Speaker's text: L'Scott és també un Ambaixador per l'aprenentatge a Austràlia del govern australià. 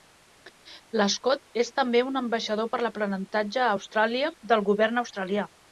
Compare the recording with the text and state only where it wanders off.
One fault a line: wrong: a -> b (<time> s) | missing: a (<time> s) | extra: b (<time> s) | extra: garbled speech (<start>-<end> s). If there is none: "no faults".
no faults